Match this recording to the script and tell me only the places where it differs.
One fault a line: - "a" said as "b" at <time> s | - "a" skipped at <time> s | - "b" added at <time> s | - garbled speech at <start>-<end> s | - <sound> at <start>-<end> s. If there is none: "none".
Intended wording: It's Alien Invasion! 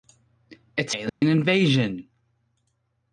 - dropout at 1.1-1.2 s